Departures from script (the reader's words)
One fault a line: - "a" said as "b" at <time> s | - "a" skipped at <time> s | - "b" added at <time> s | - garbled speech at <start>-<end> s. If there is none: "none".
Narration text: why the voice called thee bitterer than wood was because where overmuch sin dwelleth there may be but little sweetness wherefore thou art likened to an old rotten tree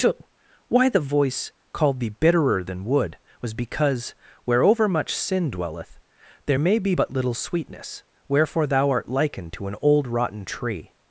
none